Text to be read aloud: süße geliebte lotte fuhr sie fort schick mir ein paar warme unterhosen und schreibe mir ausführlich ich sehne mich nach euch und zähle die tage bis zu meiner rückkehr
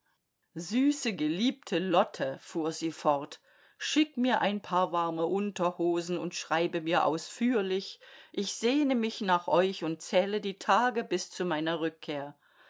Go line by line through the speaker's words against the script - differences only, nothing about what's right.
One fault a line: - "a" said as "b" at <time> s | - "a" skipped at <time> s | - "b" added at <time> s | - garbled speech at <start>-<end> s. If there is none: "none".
none